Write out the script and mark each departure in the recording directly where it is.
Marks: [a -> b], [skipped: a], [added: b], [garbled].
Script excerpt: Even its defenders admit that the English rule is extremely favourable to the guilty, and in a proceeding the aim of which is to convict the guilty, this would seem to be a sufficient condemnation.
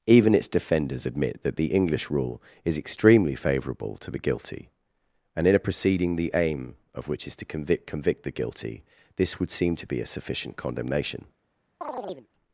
Even its defenders admit that the English rule is extremely favourable to the guilty, and in a proceeding the aim of which is to convict [added: convict] the guilty, this would seem to be a sufficient condemnation.